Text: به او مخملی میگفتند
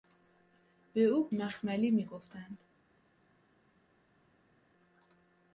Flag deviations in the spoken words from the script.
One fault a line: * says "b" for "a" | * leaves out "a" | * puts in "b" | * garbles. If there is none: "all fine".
all fine